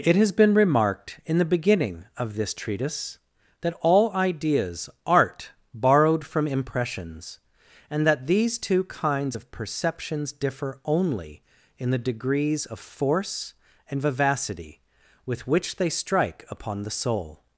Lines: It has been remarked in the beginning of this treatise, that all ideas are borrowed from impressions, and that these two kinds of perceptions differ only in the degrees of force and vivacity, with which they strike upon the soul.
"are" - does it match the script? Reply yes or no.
no